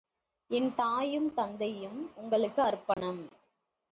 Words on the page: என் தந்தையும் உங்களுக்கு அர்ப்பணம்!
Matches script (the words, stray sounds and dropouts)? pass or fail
fail